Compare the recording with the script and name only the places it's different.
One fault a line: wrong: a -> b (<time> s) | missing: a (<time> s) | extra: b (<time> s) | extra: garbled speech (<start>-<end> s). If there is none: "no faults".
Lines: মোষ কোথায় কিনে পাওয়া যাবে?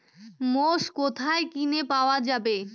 no faults